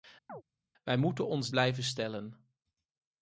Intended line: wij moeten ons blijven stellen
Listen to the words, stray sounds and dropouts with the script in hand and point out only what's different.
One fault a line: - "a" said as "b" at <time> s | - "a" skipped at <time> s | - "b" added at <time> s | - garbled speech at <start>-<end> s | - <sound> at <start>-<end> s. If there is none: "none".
- chirp at 0.3-0.4 s